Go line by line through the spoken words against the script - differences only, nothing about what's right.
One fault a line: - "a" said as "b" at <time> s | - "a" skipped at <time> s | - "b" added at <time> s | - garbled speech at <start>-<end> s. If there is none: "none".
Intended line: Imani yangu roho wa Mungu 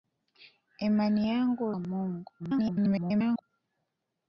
- "roho" skipped at 1.7 s
- garbled speech at 2.4-3.4 s